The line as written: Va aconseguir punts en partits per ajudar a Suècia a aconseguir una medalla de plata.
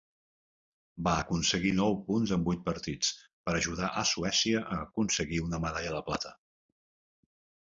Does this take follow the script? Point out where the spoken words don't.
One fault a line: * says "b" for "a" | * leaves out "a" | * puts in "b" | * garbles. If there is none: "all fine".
* puts in "nou"
* puts in "vuit"